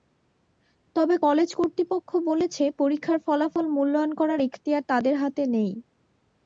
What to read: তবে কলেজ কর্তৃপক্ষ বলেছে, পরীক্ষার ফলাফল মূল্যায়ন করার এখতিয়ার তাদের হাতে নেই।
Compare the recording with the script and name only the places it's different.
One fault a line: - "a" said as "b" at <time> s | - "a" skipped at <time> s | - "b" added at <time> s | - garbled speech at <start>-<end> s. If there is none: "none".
none